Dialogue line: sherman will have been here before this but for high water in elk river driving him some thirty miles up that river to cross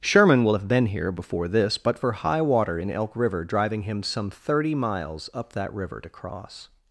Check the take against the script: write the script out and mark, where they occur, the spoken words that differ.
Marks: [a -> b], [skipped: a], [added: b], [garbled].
sherman will have been here before this but for high water in elk river driving him some thirty miles up that river to cross